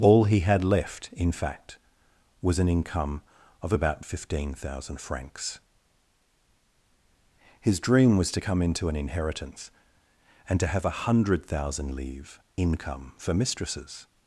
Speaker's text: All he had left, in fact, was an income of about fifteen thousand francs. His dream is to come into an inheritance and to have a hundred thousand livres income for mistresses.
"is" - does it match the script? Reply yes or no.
no